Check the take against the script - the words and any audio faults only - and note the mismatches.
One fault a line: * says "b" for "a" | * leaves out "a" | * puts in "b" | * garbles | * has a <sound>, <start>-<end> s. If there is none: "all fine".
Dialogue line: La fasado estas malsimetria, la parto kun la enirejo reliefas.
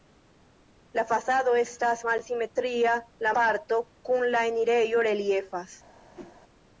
* has a whoosh, 6.1-6.4 s